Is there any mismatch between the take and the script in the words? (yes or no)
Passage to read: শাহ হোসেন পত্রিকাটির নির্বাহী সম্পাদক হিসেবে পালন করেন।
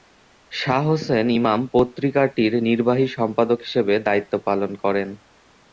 yes